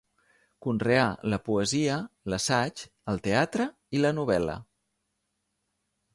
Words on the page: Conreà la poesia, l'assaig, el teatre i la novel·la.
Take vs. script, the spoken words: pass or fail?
pass